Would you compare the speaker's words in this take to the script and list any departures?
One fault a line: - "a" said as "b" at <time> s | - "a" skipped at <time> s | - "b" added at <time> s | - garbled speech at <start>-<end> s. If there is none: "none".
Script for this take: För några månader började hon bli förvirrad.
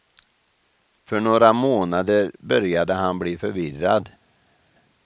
- "hon" said as "han" at 2.9 s